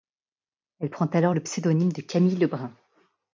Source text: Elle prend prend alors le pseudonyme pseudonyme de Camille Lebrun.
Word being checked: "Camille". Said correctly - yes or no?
yes